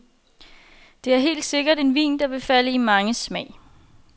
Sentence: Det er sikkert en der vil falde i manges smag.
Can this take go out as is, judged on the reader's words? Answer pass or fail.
fail